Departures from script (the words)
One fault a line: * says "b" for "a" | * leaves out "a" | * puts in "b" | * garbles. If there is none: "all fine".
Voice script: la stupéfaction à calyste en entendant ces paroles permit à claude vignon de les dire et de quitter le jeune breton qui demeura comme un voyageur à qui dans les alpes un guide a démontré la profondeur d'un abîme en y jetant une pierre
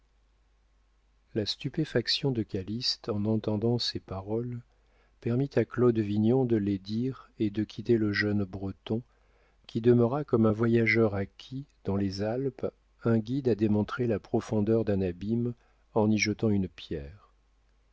* says "de" for "à"